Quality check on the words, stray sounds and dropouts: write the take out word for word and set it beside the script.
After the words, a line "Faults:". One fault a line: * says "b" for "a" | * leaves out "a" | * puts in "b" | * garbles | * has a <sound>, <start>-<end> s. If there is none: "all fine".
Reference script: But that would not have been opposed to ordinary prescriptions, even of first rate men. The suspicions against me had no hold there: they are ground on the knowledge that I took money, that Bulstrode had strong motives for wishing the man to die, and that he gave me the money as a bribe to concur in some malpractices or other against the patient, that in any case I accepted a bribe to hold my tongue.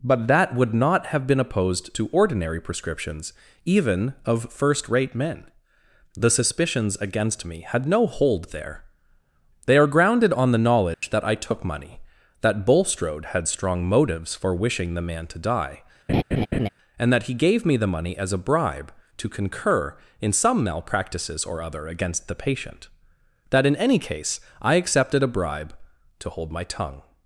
But that would not have been opposed to ordinary prescriptions, even of first rate men. The suspicions against me had no hold there: they are grounded on the knowledge that I took money, that Bulstrode had strong motives for wishing the man to die, and that he gave me the money as a bribe to concur in some malpractices or other against the patient, that in any case I accepted a bribe to hold my tongue.
Faults:
* says "grounded" for "ground"
* has a dropout, 10.9-11.0 s
* has a laugh, 16.1-16.7 s